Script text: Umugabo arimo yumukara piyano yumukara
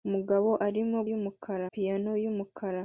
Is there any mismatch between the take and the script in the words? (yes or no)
no